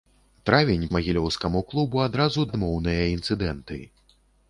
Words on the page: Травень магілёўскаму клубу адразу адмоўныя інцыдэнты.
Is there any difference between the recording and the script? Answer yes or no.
no